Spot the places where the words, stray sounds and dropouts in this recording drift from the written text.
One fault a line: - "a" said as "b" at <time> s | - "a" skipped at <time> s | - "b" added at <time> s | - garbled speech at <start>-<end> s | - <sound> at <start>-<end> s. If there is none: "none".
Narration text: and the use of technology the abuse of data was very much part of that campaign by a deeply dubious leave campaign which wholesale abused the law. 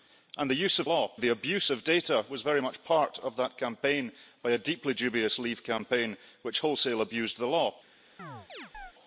- "technology" said as "law" at 0.8 s
- chirp at 8.2-8.9 s